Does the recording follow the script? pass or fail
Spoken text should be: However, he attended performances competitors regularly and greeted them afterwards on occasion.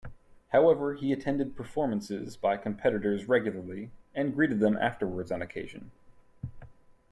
fail